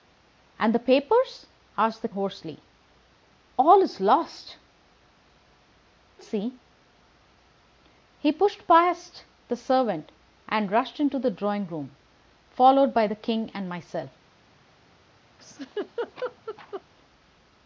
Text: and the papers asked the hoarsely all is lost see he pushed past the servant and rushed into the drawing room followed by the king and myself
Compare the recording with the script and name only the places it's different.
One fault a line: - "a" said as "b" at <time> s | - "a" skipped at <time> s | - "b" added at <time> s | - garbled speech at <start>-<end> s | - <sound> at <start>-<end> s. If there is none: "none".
- laugh at 15.4-16.8 s